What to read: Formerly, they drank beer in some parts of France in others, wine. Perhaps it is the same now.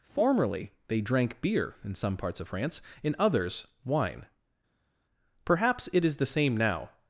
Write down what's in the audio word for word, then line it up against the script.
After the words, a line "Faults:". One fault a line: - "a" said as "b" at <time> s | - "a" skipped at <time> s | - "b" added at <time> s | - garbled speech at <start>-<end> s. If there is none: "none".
Formerly, they drank beer in some parts of France in others, wine. Perhaps it is the same now.
Faults:
none